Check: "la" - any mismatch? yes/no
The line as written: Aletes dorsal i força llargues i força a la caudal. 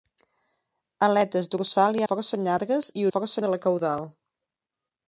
no